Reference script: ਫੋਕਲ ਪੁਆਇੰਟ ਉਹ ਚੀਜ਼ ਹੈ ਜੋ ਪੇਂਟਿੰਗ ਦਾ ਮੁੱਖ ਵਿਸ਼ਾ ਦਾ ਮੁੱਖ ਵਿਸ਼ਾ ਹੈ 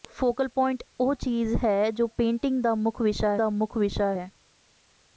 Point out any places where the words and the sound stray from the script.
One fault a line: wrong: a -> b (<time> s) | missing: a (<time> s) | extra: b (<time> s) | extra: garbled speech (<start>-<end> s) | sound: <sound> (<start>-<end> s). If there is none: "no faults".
no faults